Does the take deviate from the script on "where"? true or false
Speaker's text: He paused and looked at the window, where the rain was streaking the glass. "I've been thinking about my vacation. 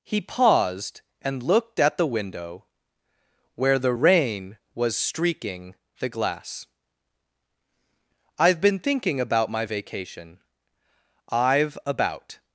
false